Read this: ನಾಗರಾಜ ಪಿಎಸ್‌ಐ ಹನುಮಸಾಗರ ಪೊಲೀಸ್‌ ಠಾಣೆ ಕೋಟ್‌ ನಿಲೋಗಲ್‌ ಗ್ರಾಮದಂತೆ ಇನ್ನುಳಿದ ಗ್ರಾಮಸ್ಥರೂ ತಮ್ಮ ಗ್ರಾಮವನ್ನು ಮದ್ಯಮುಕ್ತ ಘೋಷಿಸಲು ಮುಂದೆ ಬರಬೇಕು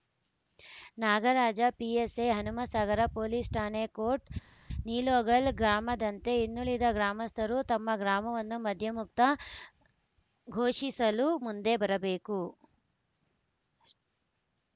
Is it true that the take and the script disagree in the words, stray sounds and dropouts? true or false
false